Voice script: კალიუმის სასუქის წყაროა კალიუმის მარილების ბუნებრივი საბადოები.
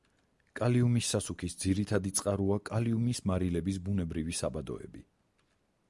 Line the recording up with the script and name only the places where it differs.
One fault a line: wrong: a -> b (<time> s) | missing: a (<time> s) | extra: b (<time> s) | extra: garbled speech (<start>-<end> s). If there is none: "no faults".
extra: ძირითადი (1.6 s)